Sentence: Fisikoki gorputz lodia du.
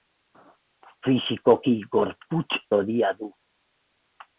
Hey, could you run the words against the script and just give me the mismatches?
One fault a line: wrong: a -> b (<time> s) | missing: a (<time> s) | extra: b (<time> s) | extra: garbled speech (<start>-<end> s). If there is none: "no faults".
no faults